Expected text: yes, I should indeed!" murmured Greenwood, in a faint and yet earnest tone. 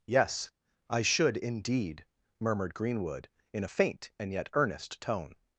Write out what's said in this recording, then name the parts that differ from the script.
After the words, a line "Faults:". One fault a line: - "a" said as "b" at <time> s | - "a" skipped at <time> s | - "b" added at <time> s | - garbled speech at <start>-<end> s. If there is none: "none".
yes, I should indeed!" murmured Greenwood, in a faint and yet earnest tone.
Faults:
none